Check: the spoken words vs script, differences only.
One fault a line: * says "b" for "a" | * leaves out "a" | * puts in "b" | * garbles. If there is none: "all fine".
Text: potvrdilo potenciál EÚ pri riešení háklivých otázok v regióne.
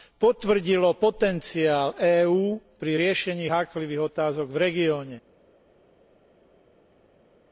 all fine